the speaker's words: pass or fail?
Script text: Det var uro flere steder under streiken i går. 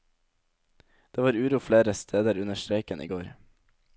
pass